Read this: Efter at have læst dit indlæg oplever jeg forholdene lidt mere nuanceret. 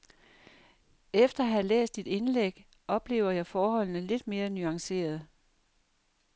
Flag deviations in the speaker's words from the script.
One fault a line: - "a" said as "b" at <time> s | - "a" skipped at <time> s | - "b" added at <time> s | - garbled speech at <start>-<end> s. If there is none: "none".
none